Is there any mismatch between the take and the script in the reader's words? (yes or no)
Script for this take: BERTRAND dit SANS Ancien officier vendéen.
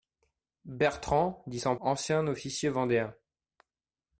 no